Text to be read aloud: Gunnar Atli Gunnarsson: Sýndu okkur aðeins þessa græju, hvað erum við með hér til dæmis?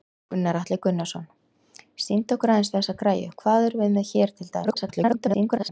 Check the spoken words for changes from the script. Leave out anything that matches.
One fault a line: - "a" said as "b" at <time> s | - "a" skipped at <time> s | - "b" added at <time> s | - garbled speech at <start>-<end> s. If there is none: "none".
- garbled speech at 4.6-5.7 s